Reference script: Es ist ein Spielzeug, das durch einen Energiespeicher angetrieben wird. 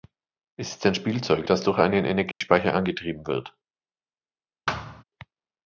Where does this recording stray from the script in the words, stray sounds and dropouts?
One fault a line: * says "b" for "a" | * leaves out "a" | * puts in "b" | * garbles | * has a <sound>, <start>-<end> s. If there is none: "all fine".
* has a dropout, 2.3-2.4 s
* has a thud, 4.7-5.0 s